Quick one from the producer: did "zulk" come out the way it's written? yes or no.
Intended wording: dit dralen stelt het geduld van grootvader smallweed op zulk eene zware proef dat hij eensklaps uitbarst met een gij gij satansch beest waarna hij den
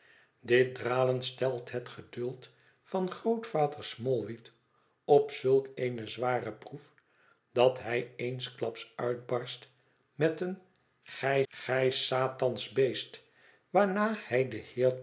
yes